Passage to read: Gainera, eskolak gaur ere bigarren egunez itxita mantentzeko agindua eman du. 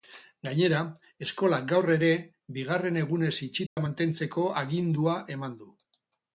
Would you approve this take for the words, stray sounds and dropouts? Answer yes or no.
no